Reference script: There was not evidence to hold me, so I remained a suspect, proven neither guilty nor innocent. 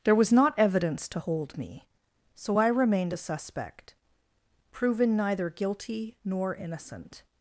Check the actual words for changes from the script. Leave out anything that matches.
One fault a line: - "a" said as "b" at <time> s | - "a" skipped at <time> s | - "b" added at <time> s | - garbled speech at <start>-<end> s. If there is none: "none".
none